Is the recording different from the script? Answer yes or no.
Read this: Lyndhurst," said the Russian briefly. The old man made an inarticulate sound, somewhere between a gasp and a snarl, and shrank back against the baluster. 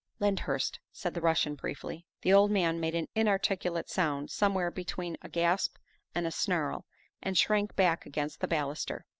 no